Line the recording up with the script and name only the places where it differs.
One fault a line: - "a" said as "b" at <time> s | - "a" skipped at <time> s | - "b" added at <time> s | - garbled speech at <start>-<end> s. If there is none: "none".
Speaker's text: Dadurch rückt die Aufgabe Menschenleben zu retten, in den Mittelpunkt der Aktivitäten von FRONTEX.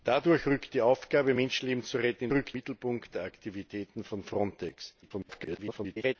- "den" said as "rückt" at 2.3 s
- garbled speech at 5.0-6.2 s